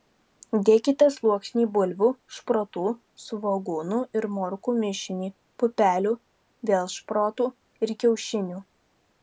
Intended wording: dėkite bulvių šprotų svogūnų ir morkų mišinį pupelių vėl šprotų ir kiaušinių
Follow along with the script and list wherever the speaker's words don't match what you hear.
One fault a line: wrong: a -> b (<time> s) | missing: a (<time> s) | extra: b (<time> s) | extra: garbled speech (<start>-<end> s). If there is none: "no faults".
extra: sluoksnį (1.1 s)